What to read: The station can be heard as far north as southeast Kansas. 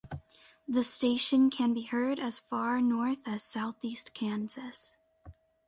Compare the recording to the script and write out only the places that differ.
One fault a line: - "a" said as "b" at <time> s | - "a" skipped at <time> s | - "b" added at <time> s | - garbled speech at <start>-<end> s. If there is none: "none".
none